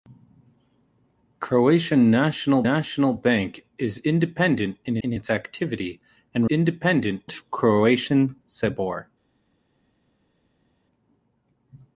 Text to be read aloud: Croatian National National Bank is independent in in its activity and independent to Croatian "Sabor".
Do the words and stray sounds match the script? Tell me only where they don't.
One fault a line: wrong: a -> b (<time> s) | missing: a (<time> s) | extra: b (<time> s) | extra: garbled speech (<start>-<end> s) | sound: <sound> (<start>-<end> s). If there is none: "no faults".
no faults